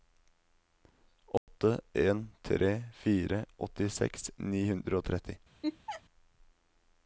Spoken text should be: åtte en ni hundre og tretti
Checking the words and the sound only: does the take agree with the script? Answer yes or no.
no